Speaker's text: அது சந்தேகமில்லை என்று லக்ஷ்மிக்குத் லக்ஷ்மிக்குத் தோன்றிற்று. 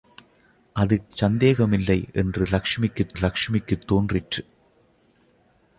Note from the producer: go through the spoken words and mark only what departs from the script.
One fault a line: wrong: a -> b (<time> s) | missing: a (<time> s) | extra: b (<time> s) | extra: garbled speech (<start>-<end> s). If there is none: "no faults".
no faults